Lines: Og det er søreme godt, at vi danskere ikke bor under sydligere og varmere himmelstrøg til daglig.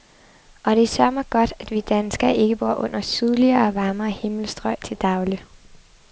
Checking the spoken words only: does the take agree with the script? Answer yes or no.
yes